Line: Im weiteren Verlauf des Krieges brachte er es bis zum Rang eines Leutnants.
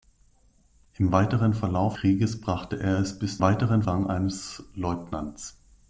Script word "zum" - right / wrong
wrong